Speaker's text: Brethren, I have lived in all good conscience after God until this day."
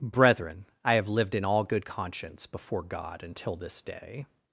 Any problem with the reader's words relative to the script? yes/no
yes